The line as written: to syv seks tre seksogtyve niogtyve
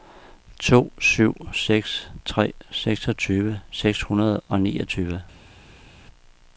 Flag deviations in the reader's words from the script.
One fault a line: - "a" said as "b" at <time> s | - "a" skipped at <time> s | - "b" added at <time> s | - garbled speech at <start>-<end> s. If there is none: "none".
- "seks hundrede og" added at 3.7 s